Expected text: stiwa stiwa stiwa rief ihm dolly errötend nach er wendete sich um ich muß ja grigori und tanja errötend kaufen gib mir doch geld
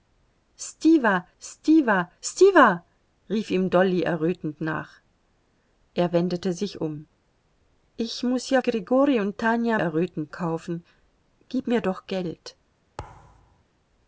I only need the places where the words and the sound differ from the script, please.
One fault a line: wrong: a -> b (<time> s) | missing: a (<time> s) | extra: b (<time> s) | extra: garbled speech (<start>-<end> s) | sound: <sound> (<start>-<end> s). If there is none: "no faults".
sound: thud (13.0-13.6 s)